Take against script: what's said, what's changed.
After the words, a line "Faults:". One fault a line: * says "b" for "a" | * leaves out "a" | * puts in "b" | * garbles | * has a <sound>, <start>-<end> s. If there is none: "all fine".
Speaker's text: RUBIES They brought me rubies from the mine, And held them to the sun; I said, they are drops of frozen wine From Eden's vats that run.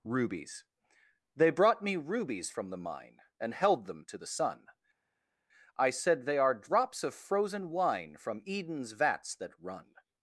RUBIES They brought me rubies from the mine, And held them to the sun; I said, they are drops of frozen wine From Eden's vats that run.
Faults:
all fine